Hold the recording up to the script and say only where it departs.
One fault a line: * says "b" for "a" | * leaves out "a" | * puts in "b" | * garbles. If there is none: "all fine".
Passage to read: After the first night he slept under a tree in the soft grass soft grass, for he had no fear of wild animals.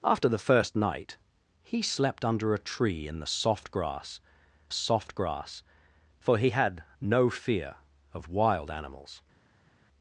all fine